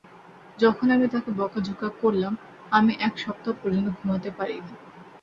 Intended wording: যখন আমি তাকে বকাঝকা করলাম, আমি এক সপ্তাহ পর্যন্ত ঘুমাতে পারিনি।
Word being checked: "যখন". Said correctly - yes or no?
yes